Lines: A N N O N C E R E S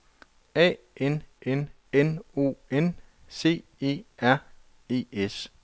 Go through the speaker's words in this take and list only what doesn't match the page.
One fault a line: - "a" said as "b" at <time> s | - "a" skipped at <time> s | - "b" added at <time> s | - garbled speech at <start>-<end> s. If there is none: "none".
- "N" added at 1.9 s